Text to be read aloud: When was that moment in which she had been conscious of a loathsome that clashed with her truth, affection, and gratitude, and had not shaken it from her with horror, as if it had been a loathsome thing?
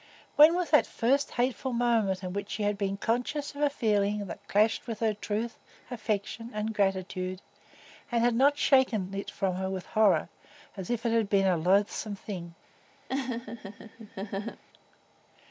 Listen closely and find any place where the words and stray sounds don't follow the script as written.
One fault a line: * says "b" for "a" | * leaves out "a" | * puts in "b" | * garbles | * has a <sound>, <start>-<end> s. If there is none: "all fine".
* puts in "first hateful"
* says "feeling" for "loathsome"
* has a laugh, 13.1-14.6 s